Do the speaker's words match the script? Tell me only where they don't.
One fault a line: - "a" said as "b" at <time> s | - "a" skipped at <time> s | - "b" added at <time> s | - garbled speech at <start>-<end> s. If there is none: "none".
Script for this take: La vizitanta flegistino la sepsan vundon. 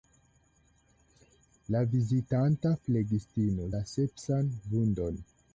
none